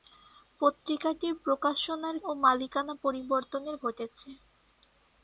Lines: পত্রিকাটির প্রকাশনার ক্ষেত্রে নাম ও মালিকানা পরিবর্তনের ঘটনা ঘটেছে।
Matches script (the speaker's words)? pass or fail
fail